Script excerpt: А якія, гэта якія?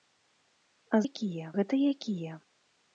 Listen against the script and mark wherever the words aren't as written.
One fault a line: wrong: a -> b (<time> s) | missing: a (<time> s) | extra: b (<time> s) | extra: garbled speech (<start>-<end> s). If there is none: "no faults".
no faults